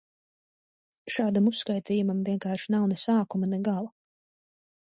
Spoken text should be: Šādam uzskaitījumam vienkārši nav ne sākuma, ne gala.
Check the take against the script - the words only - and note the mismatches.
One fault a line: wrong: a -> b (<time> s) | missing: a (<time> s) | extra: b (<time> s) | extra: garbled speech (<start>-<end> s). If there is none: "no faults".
no faults